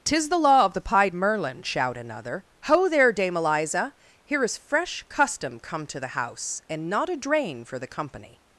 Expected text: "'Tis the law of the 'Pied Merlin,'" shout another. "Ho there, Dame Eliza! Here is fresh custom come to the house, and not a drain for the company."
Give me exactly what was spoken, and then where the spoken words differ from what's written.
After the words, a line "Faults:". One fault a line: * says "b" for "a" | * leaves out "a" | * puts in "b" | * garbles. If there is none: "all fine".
"'Tis the law of the 'Pied Merlin,'" shout another. "Ho there, Dame Eliza! Here is fresh custom come to the house, and not a drain for the company."
Faults:
all fine